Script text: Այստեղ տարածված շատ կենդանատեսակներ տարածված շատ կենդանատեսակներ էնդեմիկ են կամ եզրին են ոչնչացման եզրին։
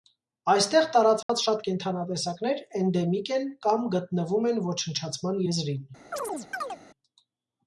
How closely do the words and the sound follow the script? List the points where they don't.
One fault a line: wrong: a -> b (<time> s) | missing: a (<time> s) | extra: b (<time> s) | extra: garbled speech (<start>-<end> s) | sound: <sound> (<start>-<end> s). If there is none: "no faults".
sound: dropout (1.2-1.3 s)
missing: տարածված շատ կենդանատեսակներ (2.6 s)
wrong: եզրին -> գտնվում (3.9 s)
sound: chirp (6.1-6.8 s)